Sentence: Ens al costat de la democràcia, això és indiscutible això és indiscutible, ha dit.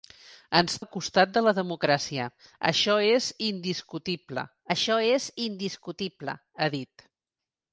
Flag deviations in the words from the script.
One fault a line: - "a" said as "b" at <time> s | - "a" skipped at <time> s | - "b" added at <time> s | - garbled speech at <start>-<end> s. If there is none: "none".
none